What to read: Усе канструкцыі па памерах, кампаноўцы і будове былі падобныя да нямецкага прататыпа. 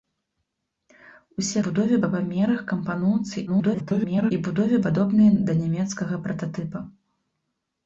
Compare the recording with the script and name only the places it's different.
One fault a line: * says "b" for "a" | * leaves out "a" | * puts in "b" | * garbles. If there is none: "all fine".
* says "будове" for "канструкцыі"
* garbles
* leaves out "былі"